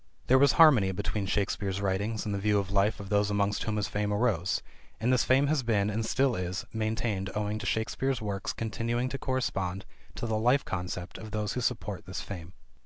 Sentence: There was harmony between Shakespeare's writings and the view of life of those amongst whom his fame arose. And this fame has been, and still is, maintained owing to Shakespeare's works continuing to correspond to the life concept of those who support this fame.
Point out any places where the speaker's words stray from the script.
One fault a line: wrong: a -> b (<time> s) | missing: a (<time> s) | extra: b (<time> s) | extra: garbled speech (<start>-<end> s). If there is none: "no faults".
no faults